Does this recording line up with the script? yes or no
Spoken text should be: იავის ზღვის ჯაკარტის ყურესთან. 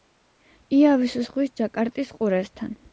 yes